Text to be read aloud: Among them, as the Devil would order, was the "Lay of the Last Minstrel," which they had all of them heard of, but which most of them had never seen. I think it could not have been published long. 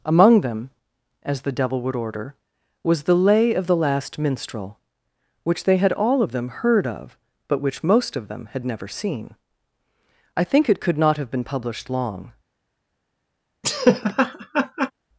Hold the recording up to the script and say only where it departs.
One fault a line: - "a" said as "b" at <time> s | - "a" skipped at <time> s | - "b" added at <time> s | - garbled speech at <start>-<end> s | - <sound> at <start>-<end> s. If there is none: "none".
- laugh at 13.6-14.9 s